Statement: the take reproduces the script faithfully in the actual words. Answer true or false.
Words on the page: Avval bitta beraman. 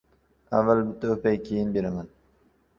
false